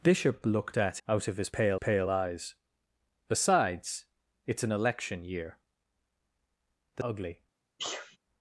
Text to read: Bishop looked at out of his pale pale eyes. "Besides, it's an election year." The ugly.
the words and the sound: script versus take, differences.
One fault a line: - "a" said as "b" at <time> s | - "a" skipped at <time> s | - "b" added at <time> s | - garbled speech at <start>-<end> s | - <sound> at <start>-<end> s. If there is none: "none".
- sneeze at 7.8-8.2 s